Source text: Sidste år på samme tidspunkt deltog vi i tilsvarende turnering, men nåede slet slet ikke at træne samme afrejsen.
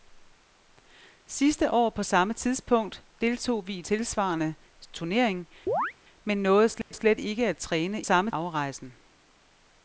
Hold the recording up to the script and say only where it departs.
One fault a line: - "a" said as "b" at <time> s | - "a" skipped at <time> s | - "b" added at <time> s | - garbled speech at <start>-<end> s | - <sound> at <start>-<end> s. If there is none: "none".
- chirp at 5.7-5.9 s
- dropout at 6.8-6.9 s